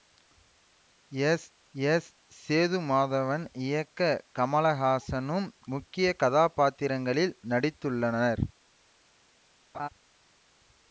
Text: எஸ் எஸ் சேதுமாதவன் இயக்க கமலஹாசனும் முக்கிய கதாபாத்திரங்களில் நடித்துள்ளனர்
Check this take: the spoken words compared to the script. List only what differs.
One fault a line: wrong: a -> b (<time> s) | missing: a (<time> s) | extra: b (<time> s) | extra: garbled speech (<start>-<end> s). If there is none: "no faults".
no faults